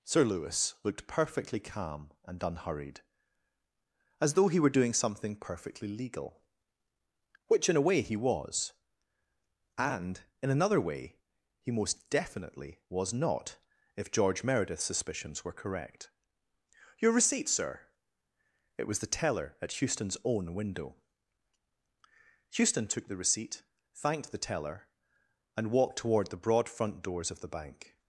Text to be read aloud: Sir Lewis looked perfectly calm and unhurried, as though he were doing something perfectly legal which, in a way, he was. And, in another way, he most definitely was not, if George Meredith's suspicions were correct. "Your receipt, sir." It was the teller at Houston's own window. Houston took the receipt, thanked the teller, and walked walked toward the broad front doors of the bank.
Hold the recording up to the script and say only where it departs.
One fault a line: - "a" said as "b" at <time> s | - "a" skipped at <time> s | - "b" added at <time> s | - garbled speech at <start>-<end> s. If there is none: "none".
- "walked" skipped at 26.0 s